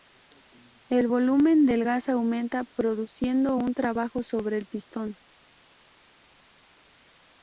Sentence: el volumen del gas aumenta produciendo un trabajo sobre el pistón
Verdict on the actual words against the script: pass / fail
pass